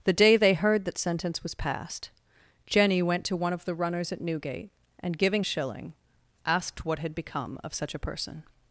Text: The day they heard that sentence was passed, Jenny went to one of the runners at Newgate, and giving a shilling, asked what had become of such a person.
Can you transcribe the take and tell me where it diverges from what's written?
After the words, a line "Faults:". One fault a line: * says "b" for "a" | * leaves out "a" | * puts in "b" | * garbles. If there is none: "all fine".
The day they heard that sentence was passed, Jenny went to one of the runners at Newgate, and giving a shilling, asked what had become of such a person.
Faults:
all fine